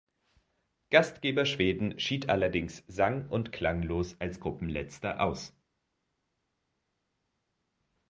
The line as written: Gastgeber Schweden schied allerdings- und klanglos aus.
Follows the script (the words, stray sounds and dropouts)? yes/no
no